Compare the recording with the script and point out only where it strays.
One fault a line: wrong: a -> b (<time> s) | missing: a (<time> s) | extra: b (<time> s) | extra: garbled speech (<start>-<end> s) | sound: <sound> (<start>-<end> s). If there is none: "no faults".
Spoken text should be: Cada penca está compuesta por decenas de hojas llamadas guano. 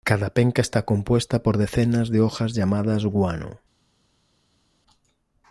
no faults